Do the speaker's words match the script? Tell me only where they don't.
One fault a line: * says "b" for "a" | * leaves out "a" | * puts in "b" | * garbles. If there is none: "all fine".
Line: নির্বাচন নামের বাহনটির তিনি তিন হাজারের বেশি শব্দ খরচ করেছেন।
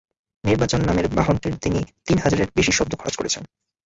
all fine